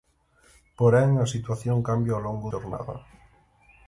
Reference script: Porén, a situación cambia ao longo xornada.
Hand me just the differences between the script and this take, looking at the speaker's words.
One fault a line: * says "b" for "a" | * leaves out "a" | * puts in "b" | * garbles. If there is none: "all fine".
all fine